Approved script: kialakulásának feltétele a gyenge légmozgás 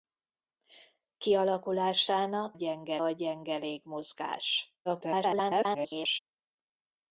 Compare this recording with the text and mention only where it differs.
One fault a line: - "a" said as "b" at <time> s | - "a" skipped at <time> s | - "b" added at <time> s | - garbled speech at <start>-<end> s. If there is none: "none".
- "feltétele" said as "gyenge" at 2.5 s
- garbled speech at 4.9-6.2 s